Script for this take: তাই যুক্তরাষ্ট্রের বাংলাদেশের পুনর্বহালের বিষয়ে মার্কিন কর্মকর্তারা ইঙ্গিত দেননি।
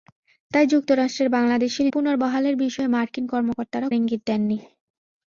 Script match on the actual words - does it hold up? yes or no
yes